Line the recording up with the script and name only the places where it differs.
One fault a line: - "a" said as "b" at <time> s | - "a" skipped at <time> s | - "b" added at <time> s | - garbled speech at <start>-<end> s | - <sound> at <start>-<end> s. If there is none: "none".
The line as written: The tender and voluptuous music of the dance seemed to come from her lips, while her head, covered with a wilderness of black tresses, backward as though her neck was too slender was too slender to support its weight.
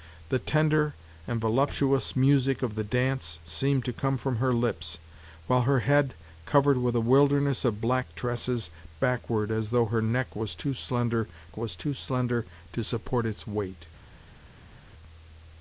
none